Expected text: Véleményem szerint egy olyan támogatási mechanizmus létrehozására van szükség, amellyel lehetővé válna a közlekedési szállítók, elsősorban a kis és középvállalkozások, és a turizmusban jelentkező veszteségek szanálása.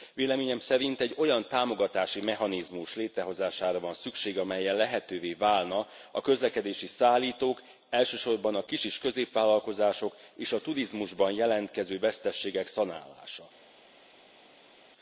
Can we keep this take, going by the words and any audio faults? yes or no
yes